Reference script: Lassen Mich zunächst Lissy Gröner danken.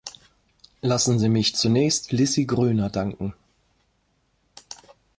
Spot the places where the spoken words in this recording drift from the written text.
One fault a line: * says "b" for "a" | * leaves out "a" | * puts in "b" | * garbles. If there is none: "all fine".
* puts in "Sie"